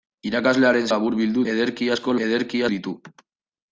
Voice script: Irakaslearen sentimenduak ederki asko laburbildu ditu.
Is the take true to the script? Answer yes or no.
no